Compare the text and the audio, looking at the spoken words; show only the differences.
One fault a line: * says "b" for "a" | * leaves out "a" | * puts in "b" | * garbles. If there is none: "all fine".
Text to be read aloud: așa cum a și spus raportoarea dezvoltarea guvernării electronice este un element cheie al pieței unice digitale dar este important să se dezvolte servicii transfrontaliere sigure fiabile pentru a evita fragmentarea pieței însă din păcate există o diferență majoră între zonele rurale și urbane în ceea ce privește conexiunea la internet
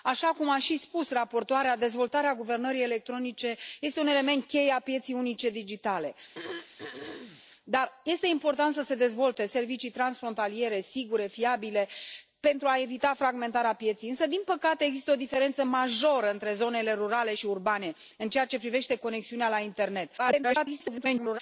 * garbles